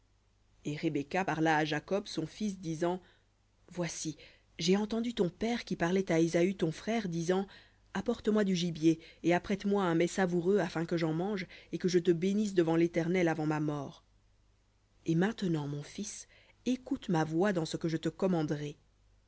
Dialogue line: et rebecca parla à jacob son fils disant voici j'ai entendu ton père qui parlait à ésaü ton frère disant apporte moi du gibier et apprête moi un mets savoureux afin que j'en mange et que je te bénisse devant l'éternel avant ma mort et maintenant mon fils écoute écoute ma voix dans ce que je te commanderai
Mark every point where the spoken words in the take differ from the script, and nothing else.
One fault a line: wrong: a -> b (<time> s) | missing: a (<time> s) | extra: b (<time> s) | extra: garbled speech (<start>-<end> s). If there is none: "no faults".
missing: écoute (17.1 s)